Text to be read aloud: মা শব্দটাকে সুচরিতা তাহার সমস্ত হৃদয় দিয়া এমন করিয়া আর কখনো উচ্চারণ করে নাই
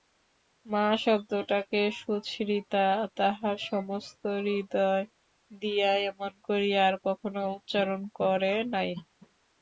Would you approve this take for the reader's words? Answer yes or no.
yes